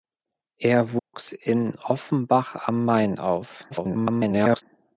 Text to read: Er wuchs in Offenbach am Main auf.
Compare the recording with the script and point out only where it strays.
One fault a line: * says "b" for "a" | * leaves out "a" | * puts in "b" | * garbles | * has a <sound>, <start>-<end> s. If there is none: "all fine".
* has a dropout, 1.0-1.1 s
* garbles